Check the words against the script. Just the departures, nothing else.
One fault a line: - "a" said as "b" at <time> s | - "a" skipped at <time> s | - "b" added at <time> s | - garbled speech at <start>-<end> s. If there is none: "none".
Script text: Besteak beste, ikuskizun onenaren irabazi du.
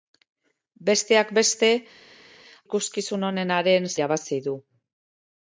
none